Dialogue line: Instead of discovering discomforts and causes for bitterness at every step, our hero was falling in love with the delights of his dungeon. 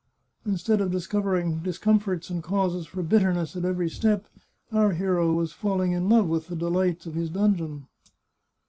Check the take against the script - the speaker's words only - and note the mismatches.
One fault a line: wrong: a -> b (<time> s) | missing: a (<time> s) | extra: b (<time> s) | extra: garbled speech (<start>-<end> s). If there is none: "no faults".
no faults